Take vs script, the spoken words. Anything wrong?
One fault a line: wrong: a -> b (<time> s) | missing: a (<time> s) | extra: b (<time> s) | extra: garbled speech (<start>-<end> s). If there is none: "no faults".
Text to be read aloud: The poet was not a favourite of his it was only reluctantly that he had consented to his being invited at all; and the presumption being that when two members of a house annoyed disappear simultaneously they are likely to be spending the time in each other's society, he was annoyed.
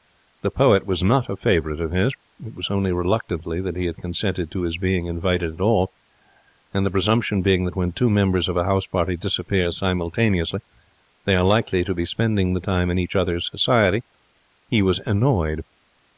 wrong: annoyed -> party (8.9 s)